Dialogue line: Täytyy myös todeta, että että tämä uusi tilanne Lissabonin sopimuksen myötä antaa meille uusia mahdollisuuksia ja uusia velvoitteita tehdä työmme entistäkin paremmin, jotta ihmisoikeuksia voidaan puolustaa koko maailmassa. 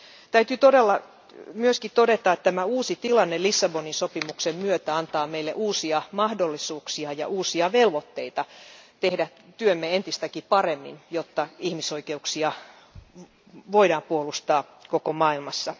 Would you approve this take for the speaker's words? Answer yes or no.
no